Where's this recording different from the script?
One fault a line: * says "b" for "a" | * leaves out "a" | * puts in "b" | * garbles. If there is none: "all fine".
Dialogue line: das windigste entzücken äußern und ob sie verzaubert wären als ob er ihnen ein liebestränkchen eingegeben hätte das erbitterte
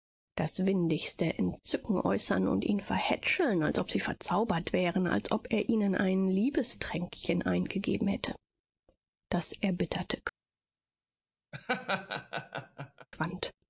* puts in "ihn verhätscheln als"